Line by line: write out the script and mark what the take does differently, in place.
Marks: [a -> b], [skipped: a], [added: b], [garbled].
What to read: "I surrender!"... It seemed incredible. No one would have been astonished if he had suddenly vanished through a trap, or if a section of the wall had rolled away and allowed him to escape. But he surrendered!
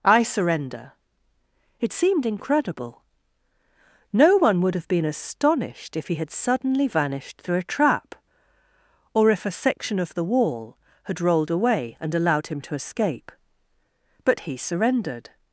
"I surrender!"... It seemed incredible. No one would have been astonished if he had suddenly vanished through a trap, or if a section of the wall had rolled away and allowed him to escape. But he surrendered!